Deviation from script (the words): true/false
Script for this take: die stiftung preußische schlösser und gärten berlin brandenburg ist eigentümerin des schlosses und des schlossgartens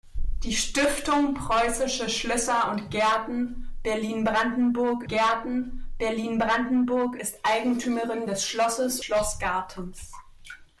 true